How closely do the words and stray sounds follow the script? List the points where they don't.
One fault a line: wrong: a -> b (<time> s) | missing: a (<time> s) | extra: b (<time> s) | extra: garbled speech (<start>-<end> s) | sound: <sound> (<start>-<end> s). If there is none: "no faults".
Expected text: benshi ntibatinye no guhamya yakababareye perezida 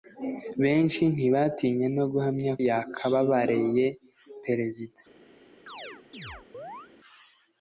sound: chirp (5.7-6.9 s)